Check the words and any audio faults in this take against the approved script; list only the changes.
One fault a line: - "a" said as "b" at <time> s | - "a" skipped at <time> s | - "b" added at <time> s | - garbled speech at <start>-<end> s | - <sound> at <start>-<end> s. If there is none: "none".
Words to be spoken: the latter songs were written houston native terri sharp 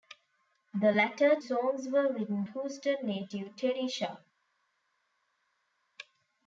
none